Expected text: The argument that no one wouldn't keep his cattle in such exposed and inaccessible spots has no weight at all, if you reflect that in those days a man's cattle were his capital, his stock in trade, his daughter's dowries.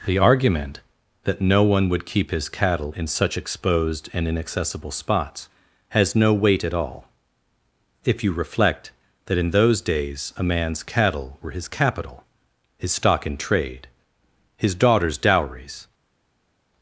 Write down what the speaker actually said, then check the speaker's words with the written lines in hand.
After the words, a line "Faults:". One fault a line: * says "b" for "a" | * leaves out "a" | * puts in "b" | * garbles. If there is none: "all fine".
The argument that no one would keep his cattle in such exposed and inaccessible spots has no weight at all, if you reflect that in those days a man's cattle were his capital, his stock in trade, his daughter's dowries.
Faults:
* says "would" for "wouldn't"